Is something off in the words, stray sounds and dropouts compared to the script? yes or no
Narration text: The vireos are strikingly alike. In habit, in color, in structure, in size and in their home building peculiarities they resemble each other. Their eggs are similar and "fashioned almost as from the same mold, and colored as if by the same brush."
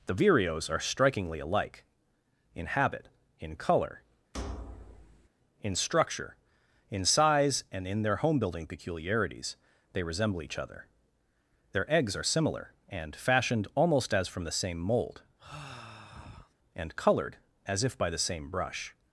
yes